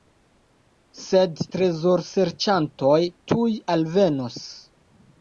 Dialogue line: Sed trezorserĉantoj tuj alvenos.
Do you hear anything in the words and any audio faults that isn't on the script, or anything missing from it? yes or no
no